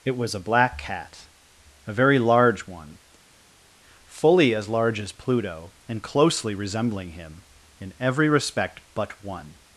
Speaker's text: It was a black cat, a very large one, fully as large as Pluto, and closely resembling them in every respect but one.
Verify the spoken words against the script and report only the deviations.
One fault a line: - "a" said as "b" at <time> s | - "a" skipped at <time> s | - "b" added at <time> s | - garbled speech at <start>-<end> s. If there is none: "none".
- "them" said as "him" at 7.1 s